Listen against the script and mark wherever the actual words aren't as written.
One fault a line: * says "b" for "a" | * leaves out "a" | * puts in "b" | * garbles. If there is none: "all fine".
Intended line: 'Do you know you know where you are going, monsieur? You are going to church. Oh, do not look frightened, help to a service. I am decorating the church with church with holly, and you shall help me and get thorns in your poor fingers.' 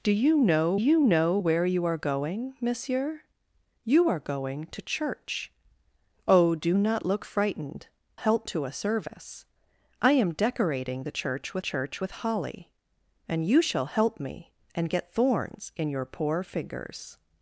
all fine